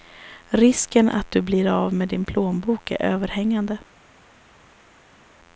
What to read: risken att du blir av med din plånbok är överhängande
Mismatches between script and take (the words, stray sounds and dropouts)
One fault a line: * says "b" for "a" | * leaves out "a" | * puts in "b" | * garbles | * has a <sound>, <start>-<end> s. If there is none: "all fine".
all fine